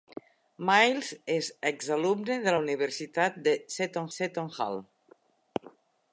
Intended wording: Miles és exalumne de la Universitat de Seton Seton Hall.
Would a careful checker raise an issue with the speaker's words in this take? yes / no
no